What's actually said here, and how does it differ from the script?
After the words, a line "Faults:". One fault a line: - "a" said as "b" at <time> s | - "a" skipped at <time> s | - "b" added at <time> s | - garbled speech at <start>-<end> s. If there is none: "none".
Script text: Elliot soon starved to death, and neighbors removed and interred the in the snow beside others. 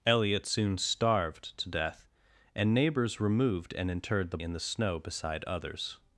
Elliot soon starved to death, and neighbors removed and interred the in the snow beside others.
Faults:
none